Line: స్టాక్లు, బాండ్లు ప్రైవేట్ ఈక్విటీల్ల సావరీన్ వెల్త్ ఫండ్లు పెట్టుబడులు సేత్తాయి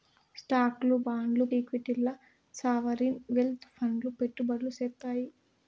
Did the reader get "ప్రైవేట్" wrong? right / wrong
wrong